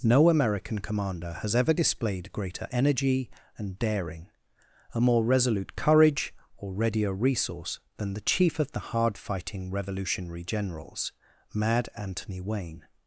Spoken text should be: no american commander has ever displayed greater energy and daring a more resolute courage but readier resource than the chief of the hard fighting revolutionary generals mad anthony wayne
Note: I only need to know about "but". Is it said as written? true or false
false